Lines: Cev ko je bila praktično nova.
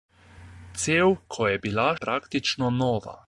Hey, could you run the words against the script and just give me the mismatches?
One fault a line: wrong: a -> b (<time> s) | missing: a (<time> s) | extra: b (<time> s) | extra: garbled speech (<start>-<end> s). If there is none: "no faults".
no faults